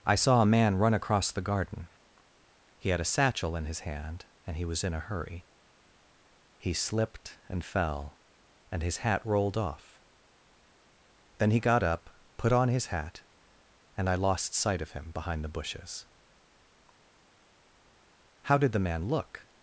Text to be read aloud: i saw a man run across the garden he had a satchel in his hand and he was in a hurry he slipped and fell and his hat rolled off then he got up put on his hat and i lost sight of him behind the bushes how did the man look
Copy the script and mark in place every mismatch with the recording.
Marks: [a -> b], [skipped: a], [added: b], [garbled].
i saw a man run across the garden he had a satchel in his hand and he was in a hurry he slipped and fell and his hat rolled off then he got up put on his hat and i lost sight of him behind the bushes how did the man look